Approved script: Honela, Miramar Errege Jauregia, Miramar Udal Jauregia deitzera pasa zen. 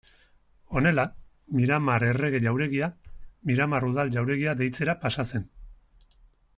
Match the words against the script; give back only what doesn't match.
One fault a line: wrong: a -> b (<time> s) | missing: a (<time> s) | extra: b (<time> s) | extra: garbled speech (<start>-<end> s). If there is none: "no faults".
no faults